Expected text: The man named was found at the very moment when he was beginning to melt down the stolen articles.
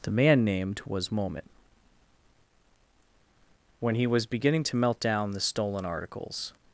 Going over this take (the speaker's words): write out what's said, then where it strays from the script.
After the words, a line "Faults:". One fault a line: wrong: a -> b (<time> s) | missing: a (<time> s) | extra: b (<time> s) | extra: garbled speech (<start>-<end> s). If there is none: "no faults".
The man named was moment when he was beginning to melt down the stolen articles.
Faults:
missing: found at the very (1.1 s)